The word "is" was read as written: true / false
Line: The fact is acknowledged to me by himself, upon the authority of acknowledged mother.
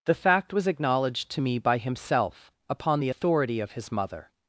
false